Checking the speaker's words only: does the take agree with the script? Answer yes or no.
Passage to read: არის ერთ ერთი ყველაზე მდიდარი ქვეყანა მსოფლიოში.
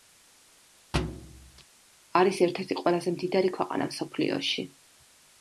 yes